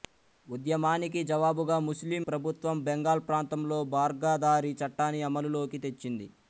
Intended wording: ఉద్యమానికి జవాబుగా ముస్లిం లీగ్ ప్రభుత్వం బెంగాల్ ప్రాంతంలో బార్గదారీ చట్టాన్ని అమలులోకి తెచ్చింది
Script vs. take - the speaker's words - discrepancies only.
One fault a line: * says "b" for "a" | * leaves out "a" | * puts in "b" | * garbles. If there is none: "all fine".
* leaves out "లీగ్"